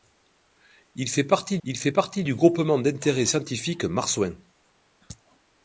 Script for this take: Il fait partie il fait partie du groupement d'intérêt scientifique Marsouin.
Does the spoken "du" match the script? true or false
true